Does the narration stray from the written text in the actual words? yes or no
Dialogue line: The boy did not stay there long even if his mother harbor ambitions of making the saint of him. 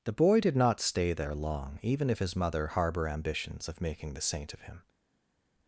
no